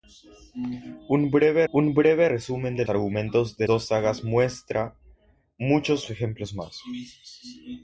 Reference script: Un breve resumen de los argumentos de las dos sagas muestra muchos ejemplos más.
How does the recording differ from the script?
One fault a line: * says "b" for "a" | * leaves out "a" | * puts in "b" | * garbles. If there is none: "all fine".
* puts in "un breve"
* leaves out "los"
* leaves out "las"